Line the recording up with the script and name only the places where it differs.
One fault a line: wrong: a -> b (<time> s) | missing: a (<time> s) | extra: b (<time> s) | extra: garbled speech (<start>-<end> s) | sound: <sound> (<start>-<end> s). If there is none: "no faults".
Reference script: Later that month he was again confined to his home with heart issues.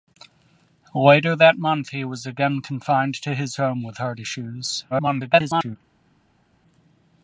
extra: garbled speech (4.9-5.8 s)